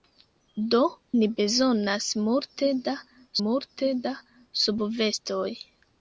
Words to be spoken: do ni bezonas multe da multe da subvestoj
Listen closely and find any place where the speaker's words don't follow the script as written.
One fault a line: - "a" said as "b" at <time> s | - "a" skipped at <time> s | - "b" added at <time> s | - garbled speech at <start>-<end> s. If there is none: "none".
none